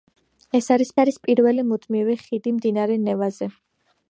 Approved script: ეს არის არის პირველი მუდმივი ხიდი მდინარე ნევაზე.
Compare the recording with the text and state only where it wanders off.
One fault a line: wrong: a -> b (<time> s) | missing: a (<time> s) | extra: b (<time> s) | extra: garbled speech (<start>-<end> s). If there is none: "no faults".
no faults